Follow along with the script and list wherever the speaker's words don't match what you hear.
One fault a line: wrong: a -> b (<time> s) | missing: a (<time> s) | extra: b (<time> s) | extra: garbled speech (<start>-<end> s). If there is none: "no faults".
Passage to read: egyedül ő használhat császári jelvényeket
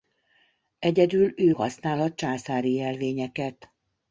no faults